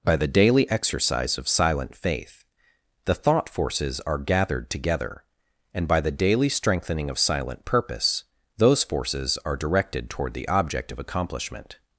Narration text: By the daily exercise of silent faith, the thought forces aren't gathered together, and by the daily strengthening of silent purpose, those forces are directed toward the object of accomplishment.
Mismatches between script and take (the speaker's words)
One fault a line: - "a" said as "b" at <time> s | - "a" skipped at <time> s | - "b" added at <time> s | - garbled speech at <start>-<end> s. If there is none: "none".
- "aren't" said as "are" at 4.0 s